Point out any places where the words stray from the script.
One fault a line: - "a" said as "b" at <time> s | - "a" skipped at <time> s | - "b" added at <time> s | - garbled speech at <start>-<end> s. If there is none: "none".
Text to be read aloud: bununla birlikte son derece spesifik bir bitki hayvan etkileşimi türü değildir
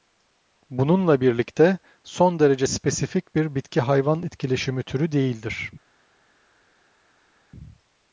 none